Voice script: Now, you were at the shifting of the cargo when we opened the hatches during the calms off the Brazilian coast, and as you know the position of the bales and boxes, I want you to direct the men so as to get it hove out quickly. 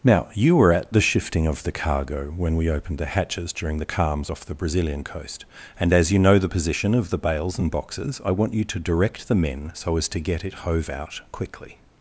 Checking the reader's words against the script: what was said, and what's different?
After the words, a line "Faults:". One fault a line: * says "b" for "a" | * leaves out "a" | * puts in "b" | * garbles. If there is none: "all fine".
Now, you were at the shifting of the cargo when we opened the hatches during the calms off the Brazilian coast, and as you know the position of the bales and boxes, I want you to direct the men so as to get it hove out quickly.
Faults:
all fine